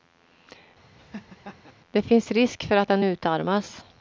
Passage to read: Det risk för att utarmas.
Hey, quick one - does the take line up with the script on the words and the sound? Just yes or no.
no